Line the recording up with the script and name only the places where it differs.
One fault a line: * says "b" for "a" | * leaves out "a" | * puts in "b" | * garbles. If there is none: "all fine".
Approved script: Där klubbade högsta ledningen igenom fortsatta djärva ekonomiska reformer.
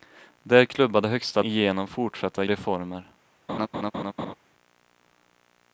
* leaves out "ledningen"
* leaves out "djärva ekonomiska"